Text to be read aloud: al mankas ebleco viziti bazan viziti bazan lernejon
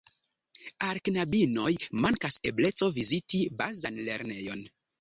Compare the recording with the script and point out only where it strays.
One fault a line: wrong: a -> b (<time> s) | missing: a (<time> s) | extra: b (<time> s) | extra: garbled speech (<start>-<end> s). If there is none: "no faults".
extra: knabinoj (1.1 s)
missing: viziti bazan (4.0 s)